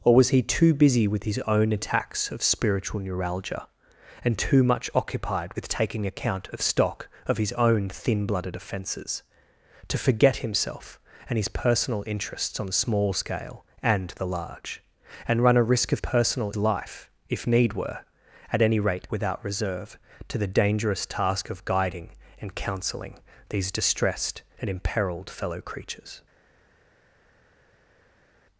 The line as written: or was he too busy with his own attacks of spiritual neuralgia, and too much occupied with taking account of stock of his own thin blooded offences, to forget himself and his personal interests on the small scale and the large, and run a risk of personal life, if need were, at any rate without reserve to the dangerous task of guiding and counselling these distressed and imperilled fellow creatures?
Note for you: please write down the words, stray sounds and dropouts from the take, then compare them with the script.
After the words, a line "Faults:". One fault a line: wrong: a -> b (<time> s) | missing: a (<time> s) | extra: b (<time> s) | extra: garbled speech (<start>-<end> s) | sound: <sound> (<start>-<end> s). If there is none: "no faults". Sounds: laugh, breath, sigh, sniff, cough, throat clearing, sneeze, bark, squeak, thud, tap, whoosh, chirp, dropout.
or was he too busy with his own attacks of spiritual neuralgia, and too much occupied with taking account of stock of his own thin blooded offences, to forget himself and his personal interests on the small scale and the large, and run a risk of personal life, if need were, at any rate without reserve to the dangerous task of guiding and counselling these distressed and imperilled fellow creatures?
Faults:
no faults